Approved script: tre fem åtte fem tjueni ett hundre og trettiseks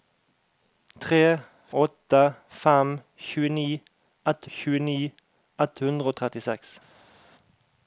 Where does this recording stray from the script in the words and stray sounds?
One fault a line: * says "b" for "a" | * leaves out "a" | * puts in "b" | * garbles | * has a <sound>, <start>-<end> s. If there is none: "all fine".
* puts in "åtte"
* says "tjueni ett" for "åtte fem"